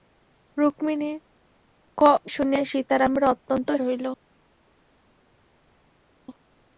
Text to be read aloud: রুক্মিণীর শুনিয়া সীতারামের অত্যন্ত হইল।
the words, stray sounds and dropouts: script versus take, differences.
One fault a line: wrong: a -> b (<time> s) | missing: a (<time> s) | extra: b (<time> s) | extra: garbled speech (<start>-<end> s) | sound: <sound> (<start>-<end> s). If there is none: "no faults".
no faults